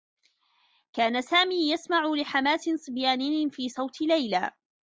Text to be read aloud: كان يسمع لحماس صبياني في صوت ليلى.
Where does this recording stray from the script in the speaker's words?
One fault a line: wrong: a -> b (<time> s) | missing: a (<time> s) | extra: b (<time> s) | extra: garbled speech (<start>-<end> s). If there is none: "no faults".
extra: سامي (1.2 s)